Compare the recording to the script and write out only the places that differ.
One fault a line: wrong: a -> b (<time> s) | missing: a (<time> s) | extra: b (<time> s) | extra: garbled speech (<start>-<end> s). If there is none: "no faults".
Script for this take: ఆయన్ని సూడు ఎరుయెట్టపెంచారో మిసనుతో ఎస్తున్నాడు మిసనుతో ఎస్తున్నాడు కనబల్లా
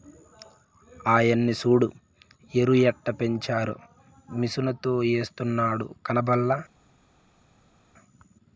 missing: మిసనుతో ఎస్తున్నాడు (5.9 s)